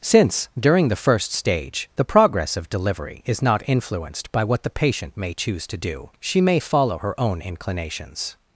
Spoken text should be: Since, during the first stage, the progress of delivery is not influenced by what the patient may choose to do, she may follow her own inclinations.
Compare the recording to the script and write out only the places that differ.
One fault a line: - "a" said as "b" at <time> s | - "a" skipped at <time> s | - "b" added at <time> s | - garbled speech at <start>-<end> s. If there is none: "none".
none